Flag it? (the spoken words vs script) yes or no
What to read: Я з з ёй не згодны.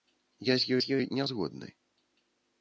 no